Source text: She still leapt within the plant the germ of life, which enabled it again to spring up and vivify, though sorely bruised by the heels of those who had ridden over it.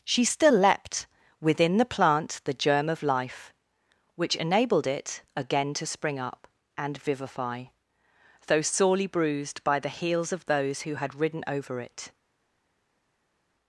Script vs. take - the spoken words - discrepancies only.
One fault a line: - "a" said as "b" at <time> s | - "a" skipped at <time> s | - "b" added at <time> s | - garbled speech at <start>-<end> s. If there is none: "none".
none